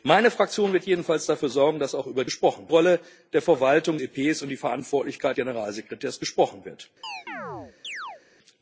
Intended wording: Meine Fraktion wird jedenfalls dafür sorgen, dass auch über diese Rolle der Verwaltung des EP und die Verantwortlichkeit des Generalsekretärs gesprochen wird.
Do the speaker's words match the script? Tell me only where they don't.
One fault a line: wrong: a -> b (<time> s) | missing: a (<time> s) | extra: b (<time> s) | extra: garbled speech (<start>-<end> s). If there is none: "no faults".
wrong: diese -> gesprochen (2.2 s)
missing: des (4.0 s)
missing: des (5.4 s)